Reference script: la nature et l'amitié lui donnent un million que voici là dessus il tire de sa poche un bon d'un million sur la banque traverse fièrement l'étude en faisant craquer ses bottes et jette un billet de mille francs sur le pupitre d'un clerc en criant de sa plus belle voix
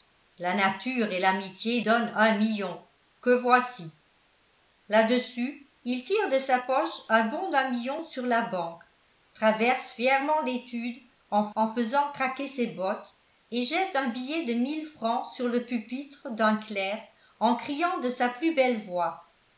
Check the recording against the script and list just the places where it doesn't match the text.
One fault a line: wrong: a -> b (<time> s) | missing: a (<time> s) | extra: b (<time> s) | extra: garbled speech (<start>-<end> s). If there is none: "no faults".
missing: lui (1.8 s)
extra: en (11.6 s)